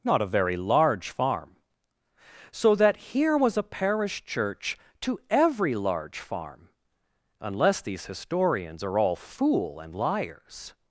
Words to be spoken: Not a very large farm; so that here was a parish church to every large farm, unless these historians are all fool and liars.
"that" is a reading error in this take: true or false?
false